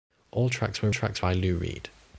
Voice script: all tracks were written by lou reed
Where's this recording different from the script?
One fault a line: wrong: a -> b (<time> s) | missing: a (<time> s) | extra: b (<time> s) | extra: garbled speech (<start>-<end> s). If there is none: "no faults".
wrong: written -> tracks (0.9 s)